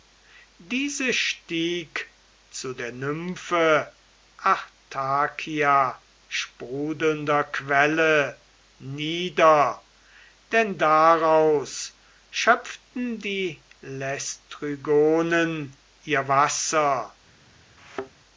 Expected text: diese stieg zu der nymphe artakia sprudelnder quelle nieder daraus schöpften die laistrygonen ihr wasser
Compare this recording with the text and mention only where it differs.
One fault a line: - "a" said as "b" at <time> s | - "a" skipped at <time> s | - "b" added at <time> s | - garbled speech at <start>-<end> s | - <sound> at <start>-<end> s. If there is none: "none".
- "denn" added at 10.5 s
- thud at 17.8-18.1 s